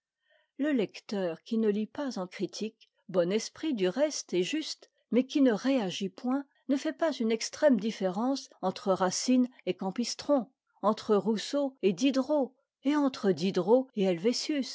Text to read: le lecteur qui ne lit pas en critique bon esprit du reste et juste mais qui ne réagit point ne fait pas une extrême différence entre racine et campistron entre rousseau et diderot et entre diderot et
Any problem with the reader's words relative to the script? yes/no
no